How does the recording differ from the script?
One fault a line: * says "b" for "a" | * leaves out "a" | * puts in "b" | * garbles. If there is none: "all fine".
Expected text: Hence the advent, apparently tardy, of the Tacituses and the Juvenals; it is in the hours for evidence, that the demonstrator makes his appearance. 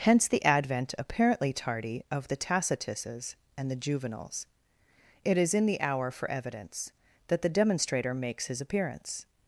* says "hour" for "hours"